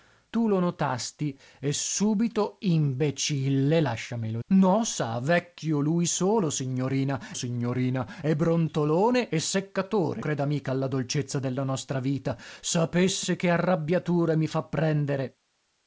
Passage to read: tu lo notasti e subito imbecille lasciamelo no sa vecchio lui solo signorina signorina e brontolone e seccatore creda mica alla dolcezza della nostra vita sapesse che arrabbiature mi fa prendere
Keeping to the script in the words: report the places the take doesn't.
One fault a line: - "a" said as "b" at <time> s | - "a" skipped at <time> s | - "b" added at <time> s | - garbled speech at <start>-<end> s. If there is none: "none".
none